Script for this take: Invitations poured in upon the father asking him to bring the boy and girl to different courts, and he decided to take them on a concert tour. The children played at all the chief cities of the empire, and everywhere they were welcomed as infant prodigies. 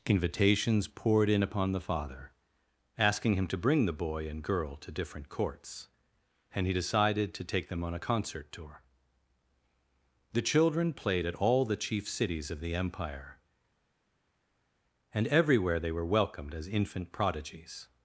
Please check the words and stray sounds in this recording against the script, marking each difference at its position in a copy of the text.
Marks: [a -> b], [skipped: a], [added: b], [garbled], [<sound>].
Invitations poured in upon the father asking him to bring the boy and girl to different courts, and he decided to take them on a concert tour. The children played at all the chief cities of the empire, and everywhere they were welcomed as infant prodigies.